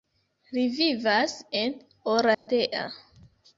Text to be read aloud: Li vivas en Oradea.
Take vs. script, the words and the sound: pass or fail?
fail